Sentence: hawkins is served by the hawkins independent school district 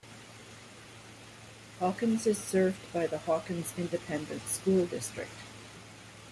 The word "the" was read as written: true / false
true